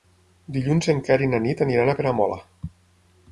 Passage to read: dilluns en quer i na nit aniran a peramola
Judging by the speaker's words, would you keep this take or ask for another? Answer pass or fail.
pass